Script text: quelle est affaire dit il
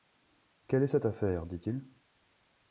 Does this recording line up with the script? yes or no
no